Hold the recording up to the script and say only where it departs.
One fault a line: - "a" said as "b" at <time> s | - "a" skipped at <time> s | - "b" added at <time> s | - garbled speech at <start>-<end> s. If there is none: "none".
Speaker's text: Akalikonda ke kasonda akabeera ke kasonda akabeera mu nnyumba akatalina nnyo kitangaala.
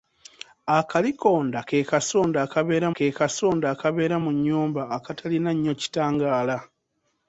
none